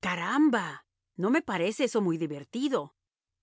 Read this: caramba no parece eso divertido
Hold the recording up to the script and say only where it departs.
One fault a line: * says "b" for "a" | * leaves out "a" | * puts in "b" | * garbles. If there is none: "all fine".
* puts in "me"
* puts in "muy"